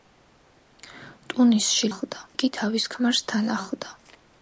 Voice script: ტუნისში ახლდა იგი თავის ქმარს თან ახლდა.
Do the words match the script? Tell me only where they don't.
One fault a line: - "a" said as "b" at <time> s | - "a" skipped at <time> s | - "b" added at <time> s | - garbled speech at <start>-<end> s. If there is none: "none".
none